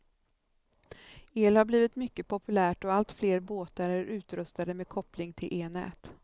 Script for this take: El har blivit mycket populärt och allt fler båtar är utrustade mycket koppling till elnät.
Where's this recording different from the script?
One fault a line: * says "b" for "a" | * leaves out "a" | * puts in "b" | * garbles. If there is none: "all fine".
* says "med" for "mycket"